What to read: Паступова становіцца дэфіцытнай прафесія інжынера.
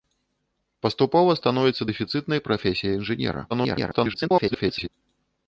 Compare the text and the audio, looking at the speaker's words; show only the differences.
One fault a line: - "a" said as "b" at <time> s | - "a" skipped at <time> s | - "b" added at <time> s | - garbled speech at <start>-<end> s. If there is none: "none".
- garbled speech at 3.5-4.9 s